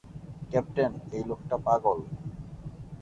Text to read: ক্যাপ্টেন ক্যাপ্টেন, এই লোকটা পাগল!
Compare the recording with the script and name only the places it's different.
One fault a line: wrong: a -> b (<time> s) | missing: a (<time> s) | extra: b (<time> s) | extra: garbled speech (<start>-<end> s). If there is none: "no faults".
missing: ক্যাপ্টেন (0.9 s)